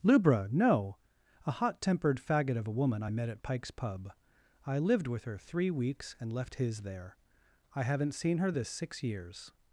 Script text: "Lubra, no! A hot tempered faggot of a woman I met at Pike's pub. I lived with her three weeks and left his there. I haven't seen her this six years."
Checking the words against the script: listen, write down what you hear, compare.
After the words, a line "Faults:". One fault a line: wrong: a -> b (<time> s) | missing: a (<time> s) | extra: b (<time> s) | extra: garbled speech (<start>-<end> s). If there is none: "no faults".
"Lubra, no! A hot tempered faggot of a woman I met at Pike's pub. I lived with her three weeks and left his there. I haven't seen her this six years."
Faults:
no faults